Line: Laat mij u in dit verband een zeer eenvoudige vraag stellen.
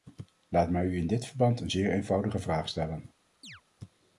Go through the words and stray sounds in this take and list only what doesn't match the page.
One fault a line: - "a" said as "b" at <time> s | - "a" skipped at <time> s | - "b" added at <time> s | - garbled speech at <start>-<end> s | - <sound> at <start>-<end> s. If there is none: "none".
- chirp at 3.4-3.6 s